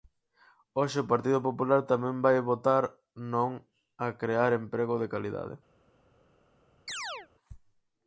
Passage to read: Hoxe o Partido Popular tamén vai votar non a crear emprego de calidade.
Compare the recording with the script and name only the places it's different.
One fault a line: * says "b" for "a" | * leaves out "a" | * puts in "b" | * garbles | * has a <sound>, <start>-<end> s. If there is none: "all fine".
* has a chirp, 6.9-7.3 s